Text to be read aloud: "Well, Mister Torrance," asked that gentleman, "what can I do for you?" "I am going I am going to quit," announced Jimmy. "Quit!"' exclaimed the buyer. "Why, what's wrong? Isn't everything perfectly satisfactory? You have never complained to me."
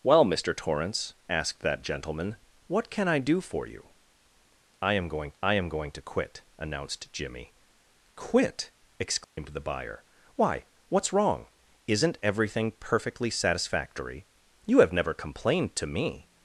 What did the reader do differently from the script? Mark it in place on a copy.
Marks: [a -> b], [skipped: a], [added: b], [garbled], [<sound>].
"Well, Mister Torrance," asked that gentleman, "what can I do for you?" "I am going I am going to quit," announced Jimmy. "Quit!"' exclaimed [dropout] the buyer. "Why, what's wrong? Isn't everything perfectly satisfactory? You have never complained to me."